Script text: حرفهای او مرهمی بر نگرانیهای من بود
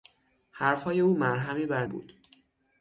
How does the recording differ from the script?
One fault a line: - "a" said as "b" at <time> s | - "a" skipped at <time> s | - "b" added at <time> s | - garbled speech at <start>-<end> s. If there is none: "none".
- "نگرانیهای من" skipped at 1.9 s